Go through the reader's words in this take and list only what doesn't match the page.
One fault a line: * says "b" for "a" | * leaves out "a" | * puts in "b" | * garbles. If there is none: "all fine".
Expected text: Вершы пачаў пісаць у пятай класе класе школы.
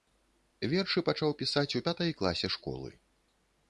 * leaves out "класе"